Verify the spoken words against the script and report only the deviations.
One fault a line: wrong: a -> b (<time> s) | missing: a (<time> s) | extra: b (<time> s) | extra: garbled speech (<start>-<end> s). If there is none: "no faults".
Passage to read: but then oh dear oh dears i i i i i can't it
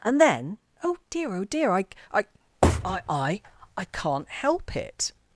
wrong: but -> and (0.0 s)
wrong: dears -> dear (1.4 s)
extra: help (4.3 s)